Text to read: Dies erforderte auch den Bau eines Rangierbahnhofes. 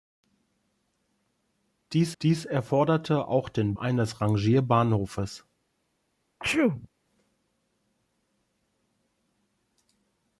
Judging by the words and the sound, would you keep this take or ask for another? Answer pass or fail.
fail